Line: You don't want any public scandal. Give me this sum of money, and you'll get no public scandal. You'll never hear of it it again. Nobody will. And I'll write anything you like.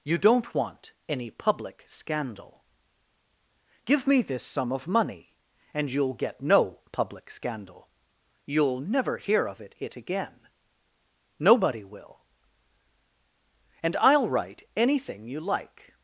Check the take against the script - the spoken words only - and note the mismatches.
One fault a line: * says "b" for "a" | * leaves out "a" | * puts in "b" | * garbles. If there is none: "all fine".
all fine